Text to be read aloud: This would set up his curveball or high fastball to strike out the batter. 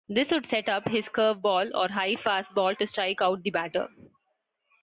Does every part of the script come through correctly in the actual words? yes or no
yes